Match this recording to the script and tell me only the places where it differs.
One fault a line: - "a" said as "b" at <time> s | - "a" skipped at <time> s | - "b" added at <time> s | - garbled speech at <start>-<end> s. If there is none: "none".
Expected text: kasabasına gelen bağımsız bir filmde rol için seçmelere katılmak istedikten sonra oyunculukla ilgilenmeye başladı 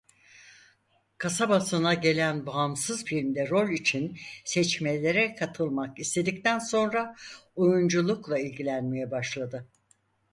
- "bir" skipped at 3.1 s